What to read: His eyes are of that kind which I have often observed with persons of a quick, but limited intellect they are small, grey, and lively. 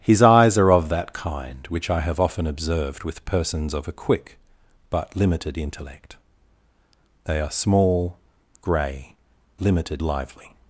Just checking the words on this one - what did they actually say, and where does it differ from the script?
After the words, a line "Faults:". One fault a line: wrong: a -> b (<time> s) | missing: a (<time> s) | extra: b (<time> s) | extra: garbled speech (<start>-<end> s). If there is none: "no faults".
His eyes are of that kind which I have often observed with persons of a quick, but limited intellect they are small, grey, limited lively.
Faults:
wrong: and -> limited (9.6 s)